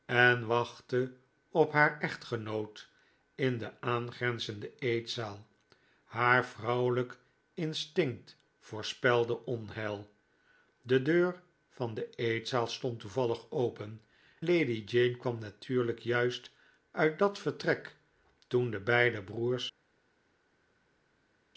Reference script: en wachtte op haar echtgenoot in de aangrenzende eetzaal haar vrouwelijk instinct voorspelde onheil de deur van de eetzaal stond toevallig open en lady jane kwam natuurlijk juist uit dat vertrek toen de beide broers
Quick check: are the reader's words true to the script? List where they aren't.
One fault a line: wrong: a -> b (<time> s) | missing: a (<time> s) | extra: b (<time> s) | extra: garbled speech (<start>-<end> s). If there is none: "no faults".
missing: en (14.0 s)